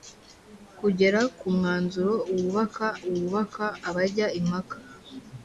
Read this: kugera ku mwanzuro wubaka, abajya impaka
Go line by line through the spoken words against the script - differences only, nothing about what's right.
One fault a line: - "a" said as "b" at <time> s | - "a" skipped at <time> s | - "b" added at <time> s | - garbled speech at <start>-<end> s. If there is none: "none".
- "wubaka" added at 3.1 s